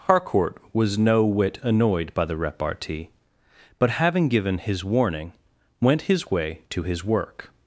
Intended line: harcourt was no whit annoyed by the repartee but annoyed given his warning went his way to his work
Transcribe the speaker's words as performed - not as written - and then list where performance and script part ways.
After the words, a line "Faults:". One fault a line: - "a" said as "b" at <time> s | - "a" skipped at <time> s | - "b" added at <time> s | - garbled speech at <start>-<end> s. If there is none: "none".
harcourt was no whit annoyed by the repartee but having given his warning went his way to his work
Faults:
- "annoyed" said as "having" at 3.9 s